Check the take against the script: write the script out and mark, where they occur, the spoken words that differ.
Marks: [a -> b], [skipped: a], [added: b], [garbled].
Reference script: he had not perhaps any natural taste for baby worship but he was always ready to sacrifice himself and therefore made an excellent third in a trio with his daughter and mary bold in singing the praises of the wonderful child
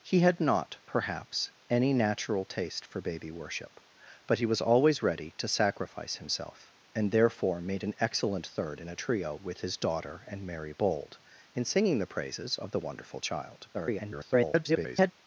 he had not perhaps any natural taste for baby worship but he was always ready to sacrifice himself and therefore made an excellent third in a trio with his daughter and mary bold in singing the praises of the wonderful child [garbled]